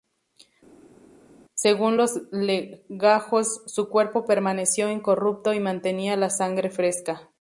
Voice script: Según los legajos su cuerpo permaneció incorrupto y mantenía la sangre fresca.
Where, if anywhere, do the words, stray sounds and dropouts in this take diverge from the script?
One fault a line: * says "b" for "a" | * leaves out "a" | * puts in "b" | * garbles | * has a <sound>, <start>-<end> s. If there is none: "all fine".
all fine